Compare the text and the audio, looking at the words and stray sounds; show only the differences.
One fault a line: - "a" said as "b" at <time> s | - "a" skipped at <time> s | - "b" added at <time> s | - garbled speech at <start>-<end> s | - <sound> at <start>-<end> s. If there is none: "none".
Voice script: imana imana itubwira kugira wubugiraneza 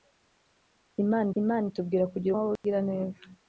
- dropout at 2.6-2.6 s